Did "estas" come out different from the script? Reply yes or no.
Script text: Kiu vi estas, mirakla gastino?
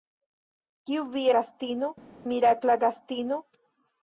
yes